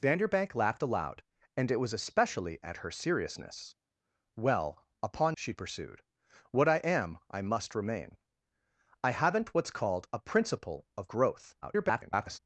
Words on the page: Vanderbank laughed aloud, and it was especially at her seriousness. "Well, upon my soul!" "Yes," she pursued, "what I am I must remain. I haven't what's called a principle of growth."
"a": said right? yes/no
yes